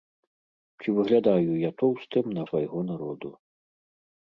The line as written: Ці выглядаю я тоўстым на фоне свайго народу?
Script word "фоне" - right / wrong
wrong